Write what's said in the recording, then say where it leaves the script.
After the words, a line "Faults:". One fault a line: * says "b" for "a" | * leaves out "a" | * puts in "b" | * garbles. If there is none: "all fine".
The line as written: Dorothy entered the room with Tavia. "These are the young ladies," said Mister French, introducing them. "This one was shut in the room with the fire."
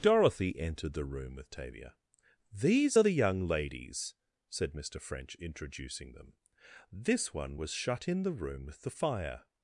Dorothy entered the room with Tavia. "These are the young ladies," said Mister French, introducing them. "This one was shut in the room with the fire."
Faults:
all fine